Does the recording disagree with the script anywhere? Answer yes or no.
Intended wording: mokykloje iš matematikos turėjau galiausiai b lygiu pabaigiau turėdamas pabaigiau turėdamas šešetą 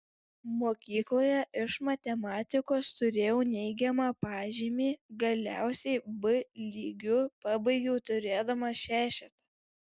yes